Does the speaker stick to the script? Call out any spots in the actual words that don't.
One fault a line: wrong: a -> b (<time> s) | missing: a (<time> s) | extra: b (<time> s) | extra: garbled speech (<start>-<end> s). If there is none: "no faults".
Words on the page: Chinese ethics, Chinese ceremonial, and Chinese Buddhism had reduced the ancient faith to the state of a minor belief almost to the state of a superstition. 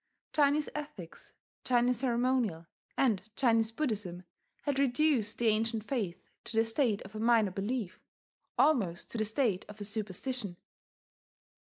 no faults